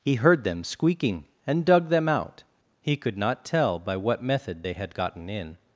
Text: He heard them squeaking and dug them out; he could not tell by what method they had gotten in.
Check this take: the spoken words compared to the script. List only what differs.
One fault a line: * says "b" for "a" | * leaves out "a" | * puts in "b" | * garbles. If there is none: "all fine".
all fine